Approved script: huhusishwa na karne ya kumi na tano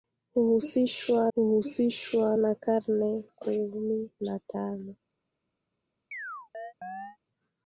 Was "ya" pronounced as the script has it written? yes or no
no